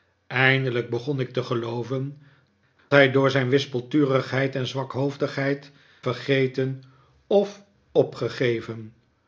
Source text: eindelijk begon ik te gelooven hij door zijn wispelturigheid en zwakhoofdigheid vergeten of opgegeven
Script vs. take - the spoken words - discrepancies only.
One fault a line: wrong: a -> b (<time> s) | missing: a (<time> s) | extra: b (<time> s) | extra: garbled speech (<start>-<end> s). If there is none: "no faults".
no faults